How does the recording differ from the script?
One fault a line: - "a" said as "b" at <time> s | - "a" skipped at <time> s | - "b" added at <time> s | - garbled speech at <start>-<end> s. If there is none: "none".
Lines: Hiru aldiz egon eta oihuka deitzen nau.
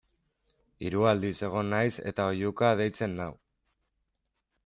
- "naiz" added at 1.7 s